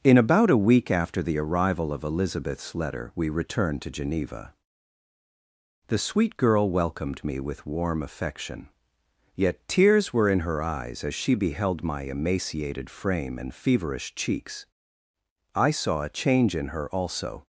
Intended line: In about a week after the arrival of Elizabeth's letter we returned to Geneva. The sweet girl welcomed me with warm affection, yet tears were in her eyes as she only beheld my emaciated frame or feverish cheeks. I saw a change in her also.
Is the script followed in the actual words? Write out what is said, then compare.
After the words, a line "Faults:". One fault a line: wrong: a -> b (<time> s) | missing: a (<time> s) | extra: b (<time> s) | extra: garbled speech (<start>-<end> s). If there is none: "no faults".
In about a week after the arrival of Elizabeth's letter we returned to Geneva. The sweet girl welcomed me with warm affection, yet tears were in her eyes as she beheld my emaciated frame and feverish cheeks. I saw a change in her also.
Faults:
missing: only (11.3 s)
wrong: or -> and (13.4 s)